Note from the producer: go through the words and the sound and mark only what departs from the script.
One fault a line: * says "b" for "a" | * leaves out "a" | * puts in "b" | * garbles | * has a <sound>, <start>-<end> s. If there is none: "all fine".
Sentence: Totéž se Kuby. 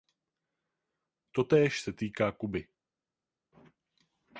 * puts in "týká"